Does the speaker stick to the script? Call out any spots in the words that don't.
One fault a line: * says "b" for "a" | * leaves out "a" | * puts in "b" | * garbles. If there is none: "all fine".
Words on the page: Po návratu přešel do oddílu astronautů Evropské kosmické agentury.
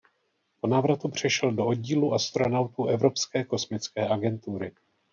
all fine